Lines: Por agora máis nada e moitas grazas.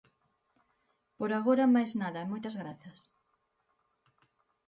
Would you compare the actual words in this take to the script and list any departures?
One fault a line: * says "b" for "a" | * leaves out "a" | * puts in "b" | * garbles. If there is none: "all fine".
all fine